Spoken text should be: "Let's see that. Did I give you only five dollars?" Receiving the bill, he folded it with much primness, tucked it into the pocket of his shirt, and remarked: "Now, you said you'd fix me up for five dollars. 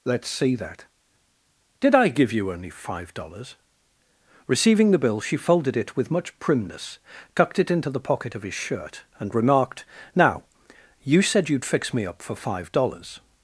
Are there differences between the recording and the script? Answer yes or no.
yes